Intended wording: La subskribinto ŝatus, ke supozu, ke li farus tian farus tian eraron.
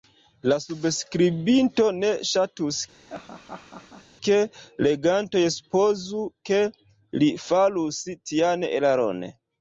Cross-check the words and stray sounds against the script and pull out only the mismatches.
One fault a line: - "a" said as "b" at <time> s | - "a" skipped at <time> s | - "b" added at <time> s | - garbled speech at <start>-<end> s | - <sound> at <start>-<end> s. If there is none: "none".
- "ne" added at 2.0 s
- laugh at 2.9-4.1 s
- "legantoj" added at 4.9 s
- "farus tian" skipped at 8.7 s